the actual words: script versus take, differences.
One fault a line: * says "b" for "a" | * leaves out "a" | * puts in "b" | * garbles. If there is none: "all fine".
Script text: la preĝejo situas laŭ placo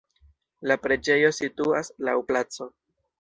all fine